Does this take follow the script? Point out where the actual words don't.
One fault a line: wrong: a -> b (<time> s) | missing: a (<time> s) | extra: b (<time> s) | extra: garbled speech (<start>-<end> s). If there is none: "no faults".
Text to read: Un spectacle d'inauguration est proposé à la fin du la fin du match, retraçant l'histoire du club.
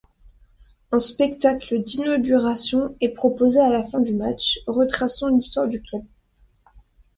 missing: la fin du (4.1 s)